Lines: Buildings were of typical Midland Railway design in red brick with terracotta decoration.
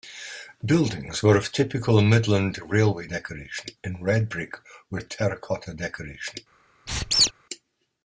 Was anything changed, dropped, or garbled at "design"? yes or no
yes